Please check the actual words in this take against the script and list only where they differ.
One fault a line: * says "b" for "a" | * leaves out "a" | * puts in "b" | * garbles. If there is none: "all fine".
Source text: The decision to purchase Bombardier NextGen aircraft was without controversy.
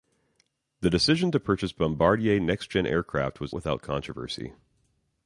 all fine